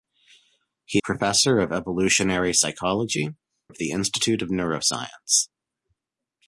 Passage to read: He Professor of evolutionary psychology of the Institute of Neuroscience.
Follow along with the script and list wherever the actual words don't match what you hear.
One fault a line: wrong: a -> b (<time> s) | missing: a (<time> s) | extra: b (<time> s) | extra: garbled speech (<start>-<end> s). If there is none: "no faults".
no faults